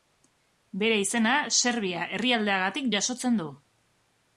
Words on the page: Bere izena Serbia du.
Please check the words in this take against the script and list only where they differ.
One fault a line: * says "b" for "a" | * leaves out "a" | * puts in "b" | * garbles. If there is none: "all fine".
* puts in "herrialdeagatik jasotzen"